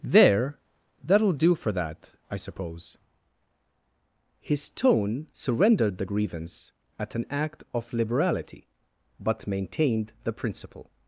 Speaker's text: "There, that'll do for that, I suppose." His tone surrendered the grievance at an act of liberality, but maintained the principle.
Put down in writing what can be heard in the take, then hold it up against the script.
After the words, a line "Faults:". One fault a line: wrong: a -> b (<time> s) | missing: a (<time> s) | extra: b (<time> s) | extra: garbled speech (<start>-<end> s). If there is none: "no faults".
"There, that'll do for that, I suppose." His tone surrendered the grievance at an act of liberality, but maintained the principle.
Faults:
no faults